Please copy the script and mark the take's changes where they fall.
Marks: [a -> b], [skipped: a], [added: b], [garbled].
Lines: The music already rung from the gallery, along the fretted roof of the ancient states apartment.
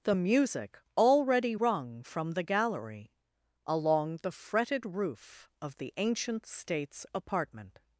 The music already rung from the gallery, along the fretted roof of the ancient states apartment.